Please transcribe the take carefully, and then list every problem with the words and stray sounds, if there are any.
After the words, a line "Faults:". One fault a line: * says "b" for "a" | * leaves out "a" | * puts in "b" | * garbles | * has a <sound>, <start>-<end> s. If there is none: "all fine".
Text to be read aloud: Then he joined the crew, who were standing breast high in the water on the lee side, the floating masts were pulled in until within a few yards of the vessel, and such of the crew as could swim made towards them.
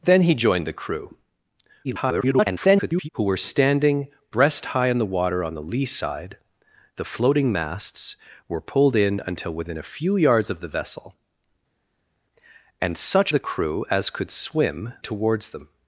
Then he joined the crew, [garbled] who were standing breast high in the water on the lee side, the floating masts were pulled in until within a few yards of the vessel, and such the crew as could swim towards them.
Faults:
* garbles
* leaves out "of"
* leaves out "made"